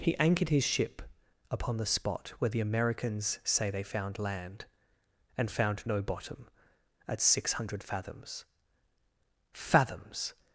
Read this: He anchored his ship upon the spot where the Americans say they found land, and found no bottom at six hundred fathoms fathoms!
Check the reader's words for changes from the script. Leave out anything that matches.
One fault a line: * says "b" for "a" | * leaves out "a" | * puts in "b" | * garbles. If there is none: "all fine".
all fine